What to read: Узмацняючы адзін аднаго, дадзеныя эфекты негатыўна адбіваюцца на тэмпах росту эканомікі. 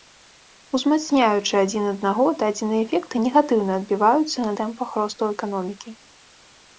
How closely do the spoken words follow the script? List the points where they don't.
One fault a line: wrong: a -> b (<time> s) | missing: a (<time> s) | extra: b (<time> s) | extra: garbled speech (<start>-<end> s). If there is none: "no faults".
no faults